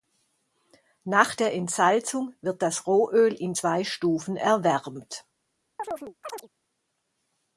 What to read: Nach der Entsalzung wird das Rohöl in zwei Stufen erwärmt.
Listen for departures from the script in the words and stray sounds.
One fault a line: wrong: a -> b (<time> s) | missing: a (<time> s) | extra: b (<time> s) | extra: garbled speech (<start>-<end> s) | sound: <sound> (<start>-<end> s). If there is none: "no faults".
sound: chirp (5.8-6.5 s)